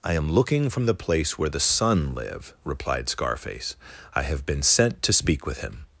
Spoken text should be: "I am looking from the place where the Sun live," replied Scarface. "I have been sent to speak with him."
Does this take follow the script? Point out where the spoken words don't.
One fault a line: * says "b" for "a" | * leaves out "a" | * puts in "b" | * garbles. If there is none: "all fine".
all fine